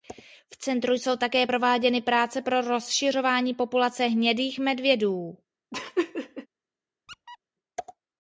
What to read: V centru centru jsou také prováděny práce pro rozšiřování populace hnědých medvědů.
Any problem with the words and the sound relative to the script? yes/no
yes